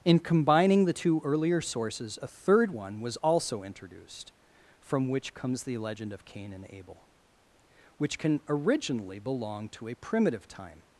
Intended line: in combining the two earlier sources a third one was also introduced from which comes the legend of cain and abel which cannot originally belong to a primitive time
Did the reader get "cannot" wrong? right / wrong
wrong